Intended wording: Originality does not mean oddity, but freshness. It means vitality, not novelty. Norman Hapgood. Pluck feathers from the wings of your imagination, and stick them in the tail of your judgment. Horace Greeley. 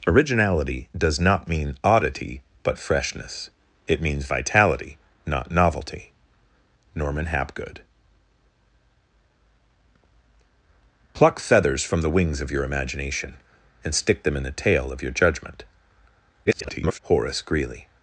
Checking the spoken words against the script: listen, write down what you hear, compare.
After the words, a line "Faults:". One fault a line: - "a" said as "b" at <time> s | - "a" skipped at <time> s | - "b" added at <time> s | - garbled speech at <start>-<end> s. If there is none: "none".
Originality does not mean oddity, but freshness. It means vitality, not novelty. Norman Hapgood. Pluck feathers from the wings of your imagination, and stick them in the tail of your judgment. [garbled] Horace Greeley.
Faults:
- garbled speech at 16.5-17.0 s